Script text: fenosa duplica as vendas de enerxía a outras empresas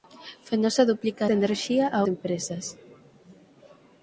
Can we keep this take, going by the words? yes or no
no